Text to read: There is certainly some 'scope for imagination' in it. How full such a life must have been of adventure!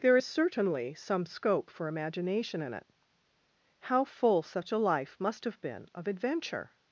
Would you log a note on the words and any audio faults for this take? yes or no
no